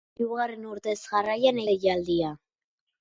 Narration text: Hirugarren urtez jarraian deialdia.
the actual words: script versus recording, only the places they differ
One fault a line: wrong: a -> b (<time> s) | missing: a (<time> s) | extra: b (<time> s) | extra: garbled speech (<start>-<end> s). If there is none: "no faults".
no faults